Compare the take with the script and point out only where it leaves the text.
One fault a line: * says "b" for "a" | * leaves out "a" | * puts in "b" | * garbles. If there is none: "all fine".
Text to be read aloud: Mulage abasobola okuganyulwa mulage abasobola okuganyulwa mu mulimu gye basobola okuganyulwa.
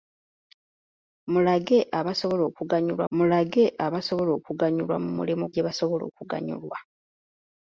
all fine